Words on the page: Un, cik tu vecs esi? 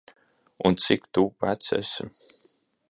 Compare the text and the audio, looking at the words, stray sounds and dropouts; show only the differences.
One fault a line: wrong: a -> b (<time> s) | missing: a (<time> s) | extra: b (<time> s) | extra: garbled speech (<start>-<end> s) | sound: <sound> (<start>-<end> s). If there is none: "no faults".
no faults